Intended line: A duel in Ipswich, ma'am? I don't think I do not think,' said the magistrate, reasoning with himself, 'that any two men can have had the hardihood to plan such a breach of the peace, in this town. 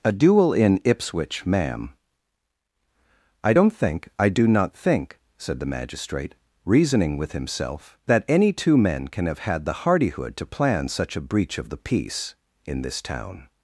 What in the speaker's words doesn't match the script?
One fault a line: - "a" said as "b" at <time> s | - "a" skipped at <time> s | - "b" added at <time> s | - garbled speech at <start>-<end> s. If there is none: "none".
none